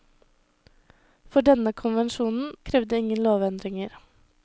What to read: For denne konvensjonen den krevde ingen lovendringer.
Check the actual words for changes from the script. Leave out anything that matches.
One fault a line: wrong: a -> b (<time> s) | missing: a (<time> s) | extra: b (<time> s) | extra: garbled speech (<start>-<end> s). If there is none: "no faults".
missing: den (2.5 s)